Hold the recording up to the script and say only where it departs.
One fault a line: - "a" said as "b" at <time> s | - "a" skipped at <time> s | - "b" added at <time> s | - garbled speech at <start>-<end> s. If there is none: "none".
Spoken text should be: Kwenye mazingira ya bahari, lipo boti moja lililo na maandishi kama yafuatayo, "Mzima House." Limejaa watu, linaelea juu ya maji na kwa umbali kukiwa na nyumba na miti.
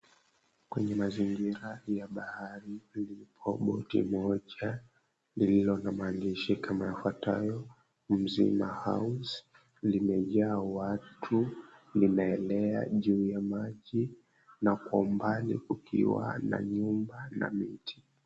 none